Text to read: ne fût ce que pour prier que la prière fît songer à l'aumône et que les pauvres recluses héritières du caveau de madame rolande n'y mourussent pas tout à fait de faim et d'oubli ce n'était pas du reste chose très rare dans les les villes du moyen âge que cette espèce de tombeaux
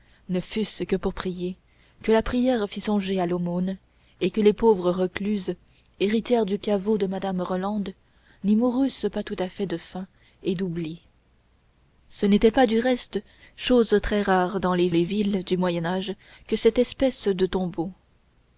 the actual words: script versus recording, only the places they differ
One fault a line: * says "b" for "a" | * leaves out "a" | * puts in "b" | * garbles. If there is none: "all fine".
all fine